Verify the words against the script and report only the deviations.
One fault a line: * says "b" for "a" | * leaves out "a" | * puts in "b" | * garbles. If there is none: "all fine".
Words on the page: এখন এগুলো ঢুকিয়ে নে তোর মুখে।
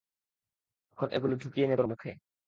all fine